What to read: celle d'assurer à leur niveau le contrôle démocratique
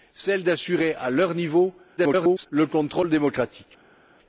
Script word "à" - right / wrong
right